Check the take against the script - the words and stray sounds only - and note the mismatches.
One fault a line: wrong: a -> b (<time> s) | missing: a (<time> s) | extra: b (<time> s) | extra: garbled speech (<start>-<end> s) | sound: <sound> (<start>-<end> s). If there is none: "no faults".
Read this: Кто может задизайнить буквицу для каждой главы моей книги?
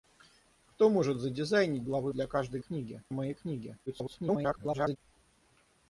wrong: буквицу -> главы (1.8 s)
wrong: главы -> книги (2.6 s)
extra: garbled speech (3.9-5.0 s)